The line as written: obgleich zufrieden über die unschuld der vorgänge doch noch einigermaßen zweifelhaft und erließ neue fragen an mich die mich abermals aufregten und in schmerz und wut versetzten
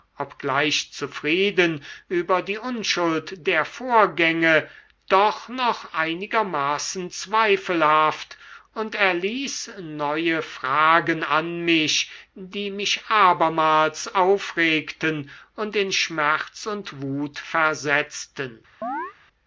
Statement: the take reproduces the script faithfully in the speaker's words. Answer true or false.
true